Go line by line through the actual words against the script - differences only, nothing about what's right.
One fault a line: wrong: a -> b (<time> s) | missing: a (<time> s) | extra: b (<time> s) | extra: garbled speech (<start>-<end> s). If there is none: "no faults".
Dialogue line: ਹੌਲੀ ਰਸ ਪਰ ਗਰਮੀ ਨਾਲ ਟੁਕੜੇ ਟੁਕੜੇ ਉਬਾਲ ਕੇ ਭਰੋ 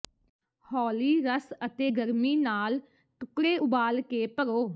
wrong: ਪਰ -> ਅਤੇ (1.6 s)
missing: ਟੁਕੜੇ (3.6 s)